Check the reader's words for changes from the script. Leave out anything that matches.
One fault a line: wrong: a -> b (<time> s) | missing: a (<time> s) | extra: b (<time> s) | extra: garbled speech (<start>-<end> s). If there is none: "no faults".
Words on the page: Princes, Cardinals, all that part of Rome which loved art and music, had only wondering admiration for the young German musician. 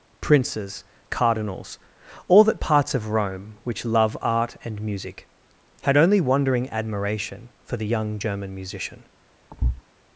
wrong: part -> parts (2.6 s)
wrong: loved -> love (3.8 s)